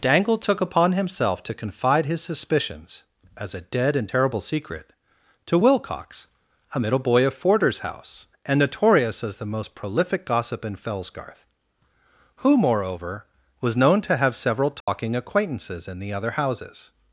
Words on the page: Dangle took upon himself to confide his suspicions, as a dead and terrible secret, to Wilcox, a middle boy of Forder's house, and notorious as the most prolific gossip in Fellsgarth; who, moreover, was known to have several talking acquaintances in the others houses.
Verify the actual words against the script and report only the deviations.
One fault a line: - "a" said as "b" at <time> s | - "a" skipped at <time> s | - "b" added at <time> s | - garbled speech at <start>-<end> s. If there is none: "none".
- "others" said as "other" at 16.1 s